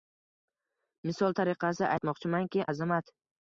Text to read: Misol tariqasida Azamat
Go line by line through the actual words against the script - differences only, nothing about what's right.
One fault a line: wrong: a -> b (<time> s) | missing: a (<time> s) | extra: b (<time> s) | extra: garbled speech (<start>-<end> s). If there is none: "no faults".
extra: aytmoqchimanki (2.0 s)